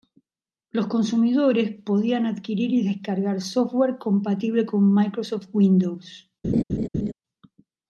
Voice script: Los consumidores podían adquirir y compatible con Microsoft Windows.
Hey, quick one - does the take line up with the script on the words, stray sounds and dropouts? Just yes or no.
no